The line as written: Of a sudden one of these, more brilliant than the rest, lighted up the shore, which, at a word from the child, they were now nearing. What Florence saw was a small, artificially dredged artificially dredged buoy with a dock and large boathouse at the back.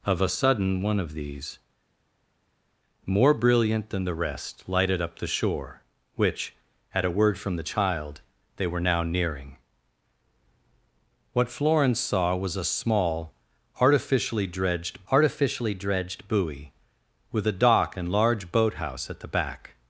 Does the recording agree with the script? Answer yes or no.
yes